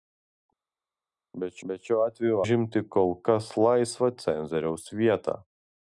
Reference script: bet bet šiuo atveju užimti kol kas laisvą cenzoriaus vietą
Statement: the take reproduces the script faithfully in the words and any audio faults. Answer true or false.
true